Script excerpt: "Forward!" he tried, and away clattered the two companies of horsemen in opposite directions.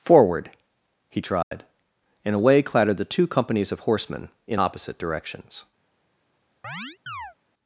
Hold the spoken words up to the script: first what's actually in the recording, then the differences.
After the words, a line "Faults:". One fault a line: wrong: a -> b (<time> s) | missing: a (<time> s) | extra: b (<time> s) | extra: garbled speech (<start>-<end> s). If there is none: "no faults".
"Forward!" he tried, and away clattered the two companies of horsemen in opposite directions.
Faults:
no faults